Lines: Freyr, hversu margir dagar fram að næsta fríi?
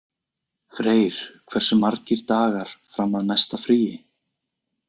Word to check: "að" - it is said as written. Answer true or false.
true